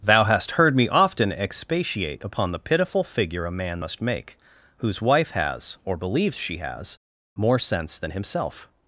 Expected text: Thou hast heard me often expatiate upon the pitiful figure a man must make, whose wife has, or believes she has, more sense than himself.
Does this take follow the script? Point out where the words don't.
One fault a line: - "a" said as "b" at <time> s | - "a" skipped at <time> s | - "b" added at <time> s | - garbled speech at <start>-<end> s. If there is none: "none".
none